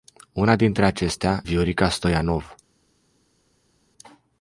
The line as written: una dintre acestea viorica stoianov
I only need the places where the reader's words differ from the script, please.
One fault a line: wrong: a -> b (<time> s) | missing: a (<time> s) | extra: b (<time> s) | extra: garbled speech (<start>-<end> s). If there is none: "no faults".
no faults